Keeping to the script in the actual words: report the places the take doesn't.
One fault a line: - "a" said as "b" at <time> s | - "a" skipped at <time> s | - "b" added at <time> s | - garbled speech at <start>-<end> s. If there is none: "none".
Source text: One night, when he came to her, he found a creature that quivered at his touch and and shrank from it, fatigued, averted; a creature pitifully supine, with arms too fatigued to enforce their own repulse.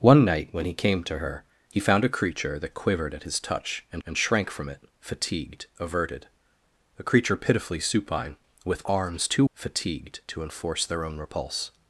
none